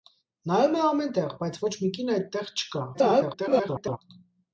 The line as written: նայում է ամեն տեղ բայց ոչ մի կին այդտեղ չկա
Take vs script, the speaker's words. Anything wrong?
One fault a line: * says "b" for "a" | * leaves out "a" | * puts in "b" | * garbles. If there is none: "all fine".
* garbles